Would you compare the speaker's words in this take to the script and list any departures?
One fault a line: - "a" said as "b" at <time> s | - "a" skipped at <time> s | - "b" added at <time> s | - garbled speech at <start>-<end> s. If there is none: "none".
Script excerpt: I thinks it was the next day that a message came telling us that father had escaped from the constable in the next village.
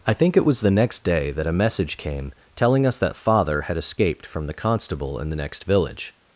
- "thinks" said as "think" at 0.1 s